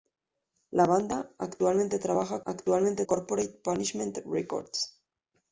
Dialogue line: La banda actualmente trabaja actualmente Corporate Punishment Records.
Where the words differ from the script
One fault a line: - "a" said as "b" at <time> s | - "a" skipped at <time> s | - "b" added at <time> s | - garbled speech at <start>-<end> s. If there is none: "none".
none